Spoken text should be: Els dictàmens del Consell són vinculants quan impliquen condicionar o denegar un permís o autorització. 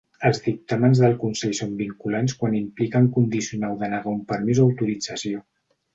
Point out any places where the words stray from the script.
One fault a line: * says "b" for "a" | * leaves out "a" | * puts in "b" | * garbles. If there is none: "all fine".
all fine